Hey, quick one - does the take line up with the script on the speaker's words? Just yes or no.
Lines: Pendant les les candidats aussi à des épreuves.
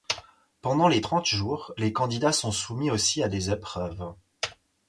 no